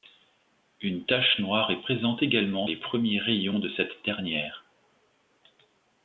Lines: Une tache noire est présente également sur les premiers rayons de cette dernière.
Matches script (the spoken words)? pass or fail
fail